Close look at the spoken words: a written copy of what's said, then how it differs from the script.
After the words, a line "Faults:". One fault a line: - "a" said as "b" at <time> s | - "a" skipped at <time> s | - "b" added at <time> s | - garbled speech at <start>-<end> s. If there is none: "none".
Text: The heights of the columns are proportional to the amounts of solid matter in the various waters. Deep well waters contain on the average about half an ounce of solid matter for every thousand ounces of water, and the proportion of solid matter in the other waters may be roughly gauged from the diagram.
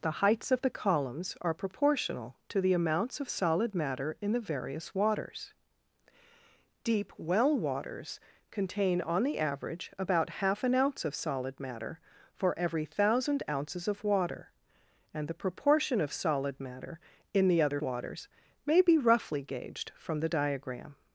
The heights of the columns are proportional to the amounts of solid matter in the various waters. Deep well waters contain on the average about half an ounce of solid matter for every thousand ounces of water, and the proportion of solid matter in the other waters may be roughly gauged from the diagram.
Faults:
none